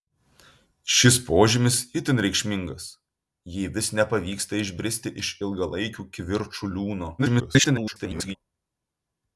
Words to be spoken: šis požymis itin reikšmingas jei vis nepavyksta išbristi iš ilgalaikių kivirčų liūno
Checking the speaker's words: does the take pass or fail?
fail